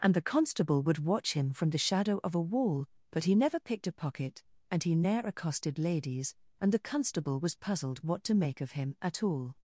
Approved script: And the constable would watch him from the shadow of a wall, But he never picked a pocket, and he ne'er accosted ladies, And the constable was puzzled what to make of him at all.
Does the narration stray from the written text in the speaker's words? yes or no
no